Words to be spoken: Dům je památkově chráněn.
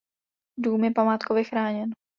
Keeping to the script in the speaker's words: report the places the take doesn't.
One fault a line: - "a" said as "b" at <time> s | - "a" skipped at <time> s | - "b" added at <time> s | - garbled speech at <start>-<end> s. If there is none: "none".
none